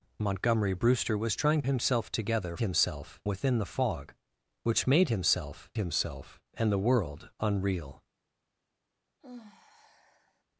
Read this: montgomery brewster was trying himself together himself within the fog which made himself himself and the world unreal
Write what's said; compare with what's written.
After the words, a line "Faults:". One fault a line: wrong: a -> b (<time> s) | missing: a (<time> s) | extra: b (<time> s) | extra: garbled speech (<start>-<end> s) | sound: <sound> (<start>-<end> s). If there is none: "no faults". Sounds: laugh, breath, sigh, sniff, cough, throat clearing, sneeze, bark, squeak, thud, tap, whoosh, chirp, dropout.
montgomery brewster was trying himself together himself within the fog which made himself himself and the world unreal
Faults:
sound: sigh (9.2-10.4 s)